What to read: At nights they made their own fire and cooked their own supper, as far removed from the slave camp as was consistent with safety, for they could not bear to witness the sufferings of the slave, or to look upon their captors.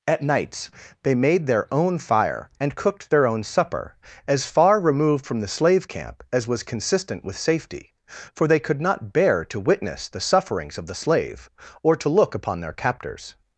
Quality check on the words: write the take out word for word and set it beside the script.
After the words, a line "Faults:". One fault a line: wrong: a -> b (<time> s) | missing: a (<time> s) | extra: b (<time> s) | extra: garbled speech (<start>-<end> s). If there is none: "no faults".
At nights they made their own fire and cooked their own supper, as far removed from the slave camp as was consistent with safety, for they could not bear to witness the sufferings of the slave, or to look upon their captors.
Faults:
no faults